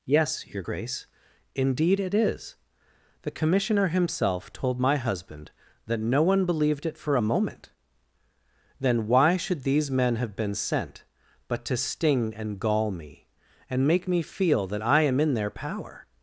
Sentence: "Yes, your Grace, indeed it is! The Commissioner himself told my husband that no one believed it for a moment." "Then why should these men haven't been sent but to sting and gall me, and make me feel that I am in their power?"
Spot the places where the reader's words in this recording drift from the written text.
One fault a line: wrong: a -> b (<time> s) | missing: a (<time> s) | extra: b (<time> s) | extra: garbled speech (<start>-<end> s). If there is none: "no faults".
wrong: haven't -> have (10.2 s)